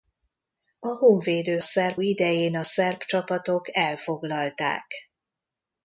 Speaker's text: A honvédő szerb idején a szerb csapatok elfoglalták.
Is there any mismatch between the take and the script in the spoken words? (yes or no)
no